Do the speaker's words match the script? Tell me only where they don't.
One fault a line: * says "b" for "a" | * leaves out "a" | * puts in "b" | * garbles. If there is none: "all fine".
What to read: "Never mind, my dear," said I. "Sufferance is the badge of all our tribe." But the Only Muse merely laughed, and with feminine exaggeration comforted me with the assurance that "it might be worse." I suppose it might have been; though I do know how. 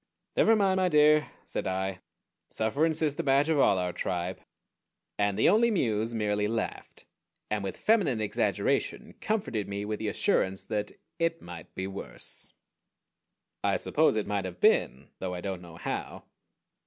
* says "And" for "But"
* says "don't" for "do"